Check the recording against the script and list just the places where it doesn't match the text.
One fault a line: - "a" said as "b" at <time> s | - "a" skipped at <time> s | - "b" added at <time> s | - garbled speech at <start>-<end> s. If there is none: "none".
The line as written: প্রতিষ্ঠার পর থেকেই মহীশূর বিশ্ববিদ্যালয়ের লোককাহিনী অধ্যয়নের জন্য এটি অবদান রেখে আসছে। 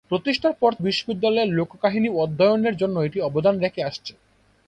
- "থেকেই মহীশূর" skipped at 0.7 s